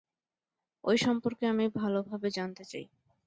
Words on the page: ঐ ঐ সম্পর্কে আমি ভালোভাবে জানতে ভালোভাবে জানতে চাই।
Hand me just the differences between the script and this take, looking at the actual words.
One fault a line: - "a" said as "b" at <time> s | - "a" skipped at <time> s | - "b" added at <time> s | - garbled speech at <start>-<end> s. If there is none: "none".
- "ঐ" skipped at 0.9 s
- "ভালোভাবে জানতে" skipped at 2.6 s